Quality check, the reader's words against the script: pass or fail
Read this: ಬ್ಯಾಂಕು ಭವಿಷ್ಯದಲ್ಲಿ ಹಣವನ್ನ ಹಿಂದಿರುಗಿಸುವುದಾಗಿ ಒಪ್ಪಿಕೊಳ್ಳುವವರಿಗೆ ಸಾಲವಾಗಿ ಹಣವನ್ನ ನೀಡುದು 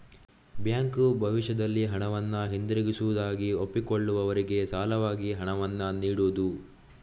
pass